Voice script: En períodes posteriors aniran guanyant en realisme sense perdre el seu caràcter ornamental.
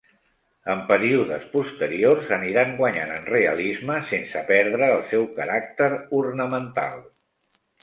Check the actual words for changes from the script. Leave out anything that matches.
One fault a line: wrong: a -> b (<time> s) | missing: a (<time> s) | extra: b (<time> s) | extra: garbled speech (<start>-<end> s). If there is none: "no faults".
no faults